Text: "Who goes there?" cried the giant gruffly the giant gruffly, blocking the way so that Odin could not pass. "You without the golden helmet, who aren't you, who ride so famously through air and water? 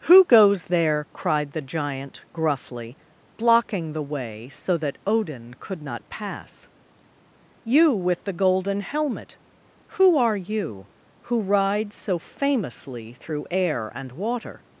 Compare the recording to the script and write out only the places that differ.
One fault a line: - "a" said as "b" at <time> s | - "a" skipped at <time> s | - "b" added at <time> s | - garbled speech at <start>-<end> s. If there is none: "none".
- "the giant gruffly" skipped at 3.0 s
- "without" said as "with" at 7.9 s
- "aren't" said as "are" at 10.2 s